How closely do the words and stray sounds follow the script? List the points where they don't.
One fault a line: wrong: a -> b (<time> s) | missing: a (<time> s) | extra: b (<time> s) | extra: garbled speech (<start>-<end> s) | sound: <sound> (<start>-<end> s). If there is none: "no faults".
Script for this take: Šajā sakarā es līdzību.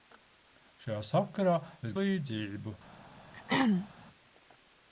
sound: throat clearing (3.3-3.9 s)